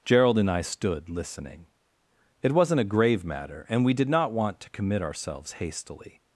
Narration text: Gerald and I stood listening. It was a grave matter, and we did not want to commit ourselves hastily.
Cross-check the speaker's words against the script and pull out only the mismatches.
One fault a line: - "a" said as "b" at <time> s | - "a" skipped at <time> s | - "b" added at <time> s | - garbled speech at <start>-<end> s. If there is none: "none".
- "was" said as "wasn't" at 2.5 s